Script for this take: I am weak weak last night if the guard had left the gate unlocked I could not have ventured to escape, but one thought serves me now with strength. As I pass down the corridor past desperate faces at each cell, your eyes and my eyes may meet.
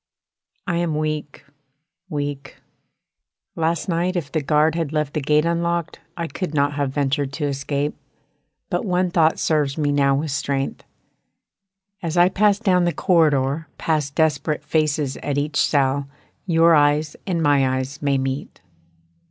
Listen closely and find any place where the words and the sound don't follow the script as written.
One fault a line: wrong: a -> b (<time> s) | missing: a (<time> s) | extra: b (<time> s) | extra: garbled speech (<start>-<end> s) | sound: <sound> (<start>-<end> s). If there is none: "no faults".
no faults